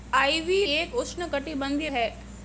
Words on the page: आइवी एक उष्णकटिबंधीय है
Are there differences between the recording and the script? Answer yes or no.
no